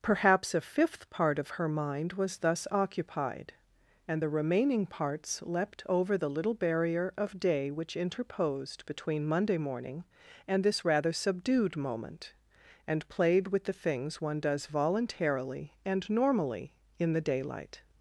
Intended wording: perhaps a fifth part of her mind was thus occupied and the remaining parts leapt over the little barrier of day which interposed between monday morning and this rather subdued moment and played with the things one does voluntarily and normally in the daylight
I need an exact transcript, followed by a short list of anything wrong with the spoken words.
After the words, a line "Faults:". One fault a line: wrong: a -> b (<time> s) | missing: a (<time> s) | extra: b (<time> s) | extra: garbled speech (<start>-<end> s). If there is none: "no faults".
perhaps a fifth part of her mind was thus occupied and the remaining parts leapt over the little barrier of day which interposed between monday morning and this rather subdued moment and played with the things one does voluntarily and normally in the daylight
Faults:
no faults